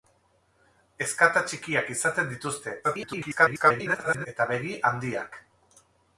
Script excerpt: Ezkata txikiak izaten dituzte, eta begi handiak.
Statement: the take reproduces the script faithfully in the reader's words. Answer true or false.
false